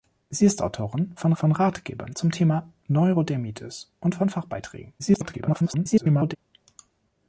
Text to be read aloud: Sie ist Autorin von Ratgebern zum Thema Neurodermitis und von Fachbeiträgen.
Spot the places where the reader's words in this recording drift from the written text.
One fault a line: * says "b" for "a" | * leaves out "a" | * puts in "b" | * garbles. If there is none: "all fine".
* puts in "von"
* garbles